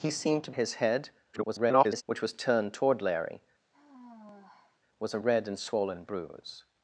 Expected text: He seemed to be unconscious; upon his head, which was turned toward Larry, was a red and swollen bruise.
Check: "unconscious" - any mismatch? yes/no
yes